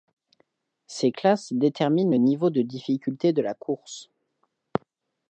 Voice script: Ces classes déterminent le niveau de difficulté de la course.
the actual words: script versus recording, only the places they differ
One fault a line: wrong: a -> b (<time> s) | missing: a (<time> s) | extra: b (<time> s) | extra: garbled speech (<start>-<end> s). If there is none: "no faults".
no faults